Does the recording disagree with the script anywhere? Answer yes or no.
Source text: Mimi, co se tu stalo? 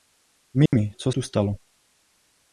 yes